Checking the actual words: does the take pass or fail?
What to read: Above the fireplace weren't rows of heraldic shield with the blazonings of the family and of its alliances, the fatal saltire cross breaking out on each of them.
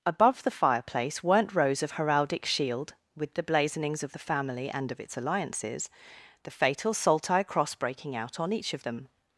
pass